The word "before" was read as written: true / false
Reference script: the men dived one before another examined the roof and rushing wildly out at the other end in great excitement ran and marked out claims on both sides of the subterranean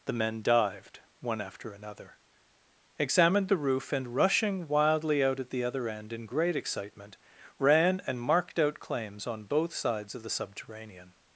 false